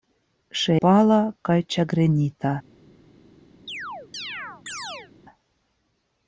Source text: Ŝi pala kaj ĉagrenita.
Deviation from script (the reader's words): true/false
false